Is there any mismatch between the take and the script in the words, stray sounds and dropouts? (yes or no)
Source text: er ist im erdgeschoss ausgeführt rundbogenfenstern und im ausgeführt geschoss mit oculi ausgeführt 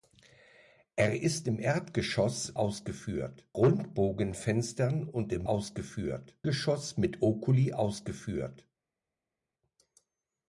no